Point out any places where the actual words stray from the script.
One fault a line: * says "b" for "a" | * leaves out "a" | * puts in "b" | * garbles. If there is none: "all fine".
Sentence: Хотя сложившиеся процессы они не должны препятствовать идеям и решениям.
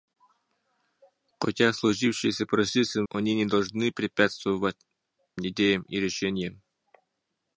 all fine